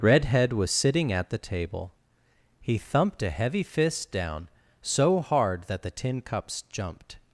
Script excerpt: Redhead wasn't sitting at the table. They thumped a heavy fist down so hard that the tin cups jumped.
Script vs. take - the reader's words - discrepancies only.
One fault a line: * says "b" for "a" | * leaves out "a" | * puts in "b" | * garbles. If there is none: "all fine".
* says "was" for "wasn't"
* says "He" for "They"